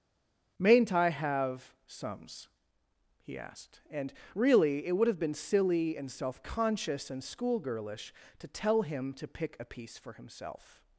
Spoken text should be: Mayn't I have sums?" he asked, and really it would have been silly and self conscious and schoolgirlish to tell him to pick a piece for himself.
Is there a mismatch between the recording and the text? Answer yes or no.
no